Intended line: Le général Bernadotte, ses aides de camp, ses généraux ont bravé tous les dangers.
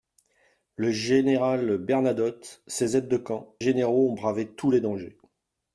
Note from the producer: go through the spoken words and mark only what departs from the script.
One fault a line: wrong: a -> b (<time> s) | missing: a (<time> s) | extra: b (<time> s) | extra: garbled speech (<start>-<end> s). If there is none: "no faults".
missing: ses (3.6 s)